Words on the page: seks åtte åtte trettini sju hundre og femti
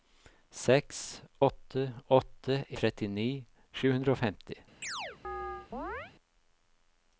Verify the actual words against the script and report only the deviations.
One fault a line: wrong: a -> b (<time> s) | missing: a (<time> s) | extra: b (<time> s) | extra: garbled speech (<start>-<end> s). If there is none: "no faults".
no faults